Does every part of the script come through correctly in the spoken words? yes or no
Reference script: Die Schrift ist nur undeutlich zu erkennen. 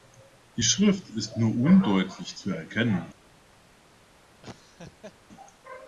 yes